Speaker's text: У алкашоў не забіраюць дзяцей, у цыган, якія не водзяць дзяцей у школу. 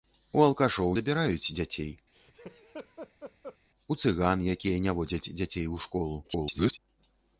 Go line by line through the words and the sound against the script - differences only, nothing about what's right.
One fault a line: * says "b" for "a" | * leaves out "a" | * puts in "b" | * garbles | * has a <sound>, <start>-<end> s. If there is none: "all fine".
* leaves out "не"
* has a laugh, 2.1-3.6 s
* garbles